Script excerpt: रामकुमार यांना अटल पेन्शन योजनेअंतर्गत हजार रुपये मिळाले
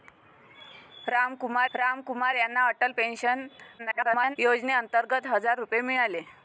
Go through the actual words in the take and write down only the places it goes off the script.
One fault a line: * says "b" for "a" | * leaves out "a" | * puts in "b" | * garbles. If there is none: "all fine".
* puts in "रामकुमार"
* garbles